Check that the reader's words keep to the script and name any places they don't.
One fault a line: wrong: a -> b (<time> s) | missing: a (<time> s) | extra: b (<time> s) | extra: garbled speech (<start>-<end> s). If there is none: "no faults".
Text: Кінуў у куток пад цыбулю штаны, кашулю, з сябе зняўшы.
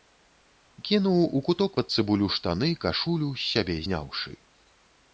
no faults